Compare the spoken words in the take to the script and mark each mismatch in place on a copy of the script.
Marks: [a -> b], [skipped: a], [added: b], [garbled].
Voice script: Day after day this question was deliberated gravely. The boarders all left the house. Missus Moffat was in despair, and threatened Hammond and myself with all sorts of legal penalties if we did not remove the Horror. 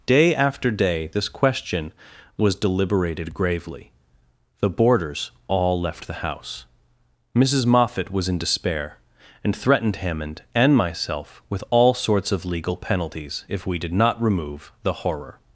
Day after day this question was deliberated gravely. The boarders all left the house. Missus Moffat was in despair, and threatened Hammond and myself with all sorts of legal penalties if we did not remove the Horror.